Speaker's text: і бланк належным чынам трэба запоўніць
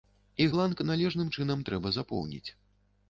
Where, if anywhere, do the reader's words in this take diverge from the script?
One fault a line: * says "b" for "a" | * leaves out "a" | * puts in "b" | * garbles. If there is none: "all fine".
all fine